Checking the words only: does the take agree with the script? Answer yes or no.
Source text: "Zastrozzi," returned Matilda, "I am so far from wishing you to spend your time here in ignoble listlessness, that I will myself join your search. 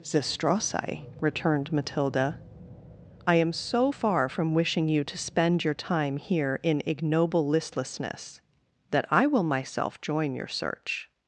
yes